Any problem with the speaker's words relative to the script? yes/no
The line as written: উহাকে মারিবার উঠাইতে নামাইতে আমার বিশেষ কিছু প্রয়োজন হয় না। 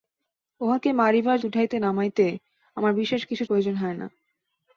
no